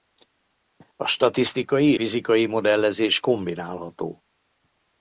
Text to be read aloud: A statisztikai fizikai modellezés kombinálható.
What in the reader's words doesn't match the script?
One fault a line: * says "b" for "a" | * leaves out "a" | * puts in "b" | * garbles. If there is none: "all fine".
all fine